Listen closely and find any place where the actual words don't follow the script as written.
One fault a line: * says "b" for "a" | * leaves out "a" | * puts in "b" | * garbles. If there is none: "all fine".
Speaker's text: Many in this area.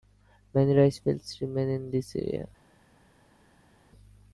* puts in "rice fields remain"